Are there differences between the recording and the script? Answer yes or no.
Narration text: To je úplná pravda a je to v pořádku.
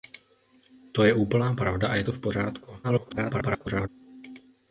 yes